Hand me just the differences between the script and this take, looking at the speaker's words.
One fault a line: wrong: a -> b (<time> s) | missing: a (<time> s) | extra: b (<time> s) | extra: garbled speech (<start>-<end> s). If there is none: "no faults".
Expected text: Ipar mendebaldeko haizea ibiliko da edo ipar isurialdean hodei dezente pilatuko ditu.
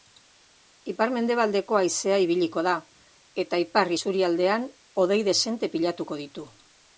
wrong: edo -> eta (3.5 s)